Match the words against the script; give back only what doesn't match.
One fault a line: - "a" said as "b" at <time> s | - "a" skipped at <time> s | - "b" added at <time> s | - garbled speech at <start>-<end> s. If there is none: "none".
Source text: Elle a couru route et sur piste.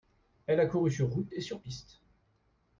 - "sur" added at 0.9 s